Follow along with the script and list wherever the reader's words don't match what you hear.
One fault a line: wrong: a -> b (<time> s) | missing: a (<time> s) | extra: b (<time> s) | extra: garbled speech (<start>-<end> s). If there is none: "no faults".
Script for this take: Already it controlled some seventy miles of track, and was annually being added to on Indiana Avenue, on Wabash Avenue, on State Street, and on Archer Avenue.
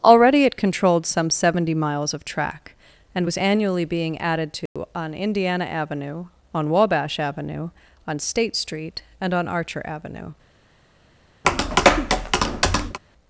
no faults